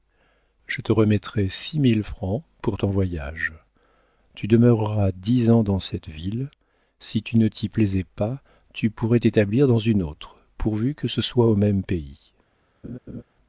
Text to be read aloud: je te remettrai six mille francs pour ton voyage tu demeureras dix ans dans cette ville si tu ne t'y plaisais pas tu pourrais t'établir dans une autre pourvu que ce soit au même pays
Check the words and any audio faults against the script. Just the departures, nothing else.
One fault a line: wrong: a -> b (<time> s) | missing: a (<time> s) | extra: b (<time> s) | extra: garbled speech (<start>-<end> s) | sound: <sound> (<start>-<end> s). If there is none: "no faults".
sound: laugh (12.8-13.2 s)